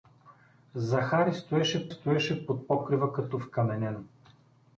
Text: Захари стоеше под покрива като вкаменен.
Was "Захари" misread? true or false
false